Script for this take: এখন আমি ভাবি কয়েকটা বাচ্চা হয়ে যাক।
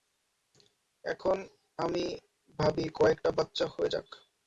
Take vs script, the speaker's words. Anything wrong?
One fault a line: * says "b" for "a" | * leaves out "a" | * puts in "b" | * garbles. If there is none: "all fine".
all fine